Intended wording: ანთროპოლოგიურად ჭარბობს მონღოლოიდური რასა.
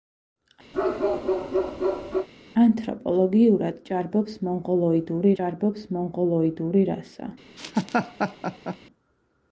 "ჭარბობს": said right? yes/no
yes